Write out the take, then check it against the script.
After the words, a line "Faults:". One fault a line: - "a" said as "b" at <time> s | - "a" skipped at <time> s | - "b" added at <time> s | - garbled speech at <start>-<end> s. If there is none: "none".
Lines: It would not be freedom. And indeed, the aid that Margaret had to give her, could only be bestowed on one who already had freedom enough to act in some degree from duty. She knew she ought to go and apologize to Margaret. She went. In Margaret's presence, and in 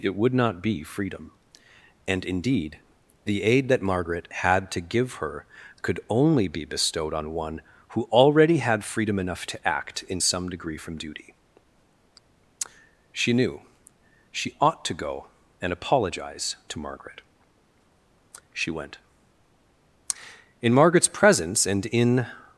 It would not be freedom. And indeed, the aid that Margaret had to give her, could only be bestowed on one who already had freedom enough to act in some degree from duty. She knew she ought to go and apologize to Margaret. She went. In Margaret's presence, and in
Faults:
none